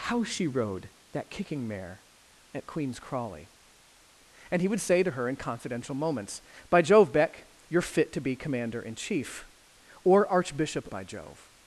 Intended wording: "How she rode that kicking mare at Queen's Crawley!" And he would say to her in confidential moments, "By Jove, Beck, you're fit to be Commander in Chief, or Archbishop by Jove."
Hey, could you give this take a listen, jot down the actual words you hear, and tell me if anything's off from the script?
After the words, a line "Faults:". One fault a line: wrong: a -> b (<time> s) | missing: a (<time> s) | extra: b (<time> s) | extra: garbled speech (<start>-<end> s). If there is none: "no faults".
"How she rode that kicking mare at Queen's Crawley!" And he would say to her in confidential moments, "By Jove, Beck, you're fit to be Commander in Chief, or Archbishop by Jove."
Faults:
no faults